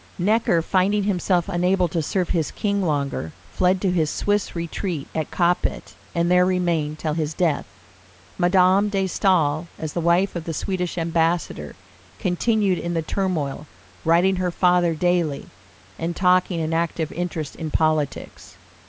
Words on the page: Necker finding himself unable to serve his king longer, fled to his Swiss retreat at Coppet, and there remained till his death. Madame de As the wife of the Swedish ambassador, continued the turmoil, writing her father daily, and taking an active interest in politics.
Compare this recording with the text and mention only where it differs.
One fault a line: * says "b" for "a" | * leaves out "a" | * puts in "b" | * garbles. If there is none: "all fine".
* puts in "Staël"
* puts in "in"